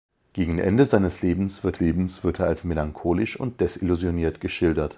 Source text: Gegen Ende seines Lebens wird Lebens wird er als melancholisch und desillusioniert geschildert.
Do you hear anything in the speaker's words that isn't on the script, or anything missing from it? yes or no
no